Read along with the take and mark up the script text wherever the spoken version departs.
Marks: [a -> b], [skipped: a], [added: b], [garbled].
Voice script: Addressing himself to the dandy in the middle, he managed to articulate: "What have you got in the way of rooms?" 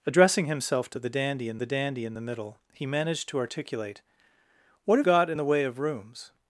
Addressing himself to the dandy in the [added: dandy in the] middle, he managed to articulate: "What have [skipped: you] got in the way of rooms?"